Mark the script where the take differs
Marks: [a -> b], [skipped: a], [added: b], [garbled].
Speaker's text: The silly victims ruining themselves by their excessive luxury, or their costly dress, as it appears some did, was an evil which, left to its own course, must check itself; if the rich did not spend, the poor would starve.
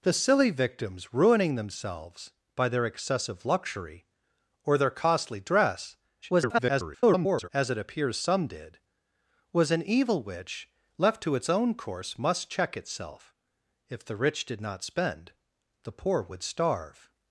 The silly victims ruining themselves by their excessive luxury, or their costly dress, [garbled] as it appears some did, was an evil which, left to its own course, must check itself; if the rich did not spend, the poor would starve.